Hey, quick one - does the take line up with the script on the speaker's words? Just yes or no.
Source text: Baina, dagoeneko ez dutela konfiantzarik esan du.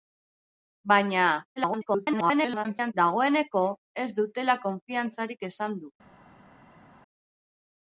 no